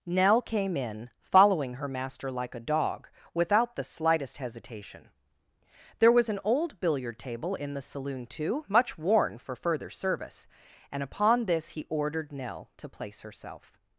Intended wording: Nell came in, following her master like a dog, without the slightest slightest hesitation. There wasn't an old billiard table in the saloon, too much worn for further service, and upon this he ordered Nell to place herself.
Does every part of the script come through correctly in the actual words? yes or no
no